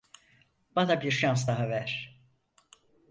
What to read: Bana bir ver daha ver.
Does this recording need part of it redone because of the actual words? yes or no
yes